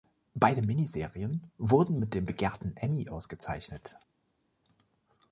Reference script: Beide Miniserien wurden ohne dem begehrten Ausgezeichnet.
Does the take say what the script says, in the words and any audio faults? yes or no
no